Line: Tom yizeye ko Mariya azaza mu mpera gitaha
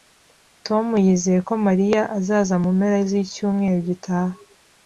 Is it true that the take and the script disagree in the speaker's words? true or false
true